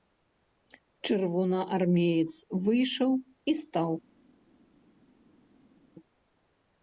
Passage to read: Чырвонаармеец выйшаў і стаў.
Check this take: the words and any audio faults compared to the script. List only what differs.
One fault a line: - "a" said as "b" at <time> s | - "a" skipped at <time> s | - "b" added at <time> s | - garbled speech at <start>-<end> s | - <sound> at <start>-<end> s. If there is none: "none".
none